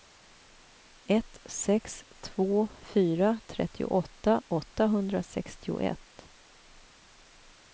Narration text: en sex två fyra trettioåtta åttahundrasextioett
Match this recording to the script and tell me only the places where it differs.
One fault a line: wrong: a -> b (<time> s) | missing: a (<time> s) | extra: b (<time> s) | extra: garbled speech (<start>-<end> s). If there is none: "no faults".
wrong: en -> ett (1.1 s)